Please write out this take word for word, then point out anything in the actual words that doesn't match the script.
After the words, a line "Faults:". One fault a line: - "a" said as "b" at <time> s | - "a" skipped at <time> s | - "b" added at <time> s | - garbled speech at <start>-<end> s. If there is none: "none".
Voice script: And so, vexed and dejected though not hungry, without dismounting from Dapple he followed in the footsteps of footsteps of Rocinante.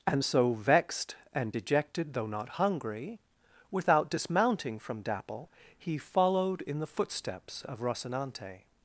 And so, vexed and dejected though not hungry, without dismounting from Dapple he followed in the footsteps of Rocinante.
Faults:
- "footsteps of" skipped at 7.8 s